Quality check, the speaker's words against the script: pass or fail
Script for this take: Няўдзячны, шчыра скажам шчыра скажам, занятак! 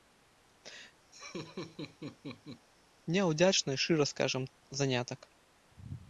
fail